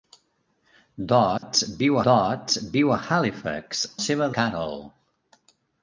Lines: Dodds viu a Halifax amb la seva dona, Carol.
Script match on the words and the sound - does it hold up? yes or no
no